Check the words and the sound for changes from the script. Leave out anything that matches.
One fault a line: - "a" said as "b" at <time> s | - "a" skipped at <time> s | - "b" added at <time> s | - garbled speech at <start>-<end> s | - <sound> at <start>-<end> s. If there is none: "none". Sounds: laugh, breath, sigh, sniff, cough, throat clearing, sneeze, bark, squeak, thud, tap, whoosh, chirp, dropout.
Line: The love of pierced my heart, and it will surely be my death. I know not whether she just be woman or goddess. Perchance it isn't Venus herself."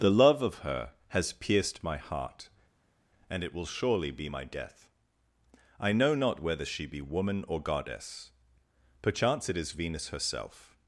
- "her has" added at 0.7 s
- "just" skipped at 6.9 s
- "isn't" said as "is" at 9.6 s